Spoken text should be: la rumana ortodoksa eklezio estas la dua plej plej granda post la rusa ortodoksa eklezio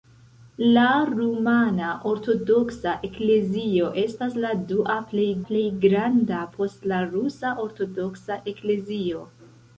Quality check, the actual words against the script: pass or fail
pass